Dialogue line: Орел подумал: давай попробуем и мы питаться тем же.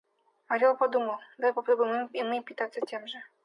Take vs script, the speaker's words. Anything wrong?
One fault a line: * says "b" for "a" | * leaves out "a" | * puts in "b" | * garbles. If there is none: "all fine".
all fine